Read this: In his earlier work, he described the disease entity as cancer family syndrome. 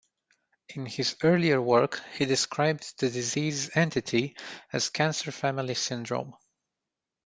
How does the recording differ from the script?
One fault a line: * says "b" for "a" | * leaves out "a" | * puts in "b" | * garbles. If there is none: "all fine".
all fine